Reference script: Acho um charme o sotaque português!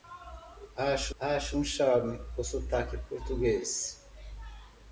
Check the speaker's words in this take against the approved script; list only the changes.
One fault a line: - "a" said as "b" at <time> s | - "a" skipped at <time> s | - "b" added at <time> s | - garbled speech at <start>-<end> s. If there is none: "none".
- "acho" added at 1.2 s